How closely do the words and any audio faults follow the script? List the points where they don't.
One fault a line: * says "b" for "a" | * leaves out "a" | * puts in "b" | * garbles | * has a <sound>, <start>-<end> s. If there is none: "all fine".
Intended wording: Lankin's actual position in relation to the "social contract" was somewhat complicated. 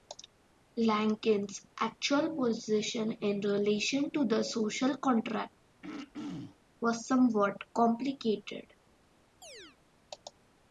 * has a throat clearing, 5.8-6.6 s
* has a chirp, 9.4-9.8 s